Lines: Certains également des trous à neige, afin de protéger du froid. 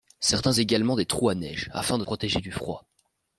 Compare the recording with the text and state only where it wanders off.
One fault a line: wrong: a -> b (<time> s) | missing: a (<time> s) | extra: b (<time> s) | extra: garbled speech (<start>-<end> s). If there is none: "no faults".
no faults